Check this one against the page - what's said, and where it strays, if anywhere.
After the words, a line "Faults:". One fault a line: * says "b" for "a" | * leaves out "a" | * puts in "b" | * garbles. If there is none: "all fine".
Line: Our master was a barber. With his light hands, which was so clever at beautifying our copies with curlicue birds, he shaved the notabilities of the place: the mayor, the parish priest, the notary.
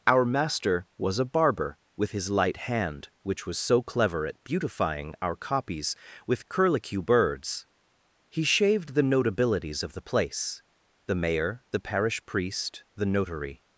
Our master was a barber. With his light hand, which was so clever at beautifying our copies with curlicue birds, he shaved the notabilities of the place: the mayor, the parish priest, the notary.
Faults:
* says "hand" for "hands"